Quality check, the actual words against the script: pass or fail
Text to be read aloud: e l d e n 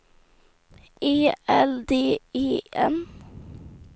pass